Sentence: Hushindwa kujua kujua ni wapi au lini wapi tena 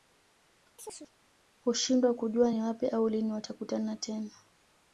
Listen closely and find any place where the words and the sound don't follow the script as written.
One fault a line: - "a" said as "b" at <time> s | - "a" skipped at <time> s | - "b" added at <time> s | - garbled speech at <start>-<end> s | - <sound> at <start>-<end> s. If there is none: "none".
- chirp at 0.8-1.1 s
- "kujua" skipped at 2.5 s
- "wapi" said as "watakutana" at 3.3 s